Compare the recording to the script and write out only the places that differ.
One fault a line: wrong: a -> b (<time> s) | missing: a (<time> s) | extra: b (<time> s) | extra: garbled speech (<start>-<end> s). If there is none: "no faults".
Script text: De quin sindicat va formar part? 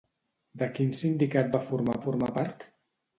extra: formar (2.1 s)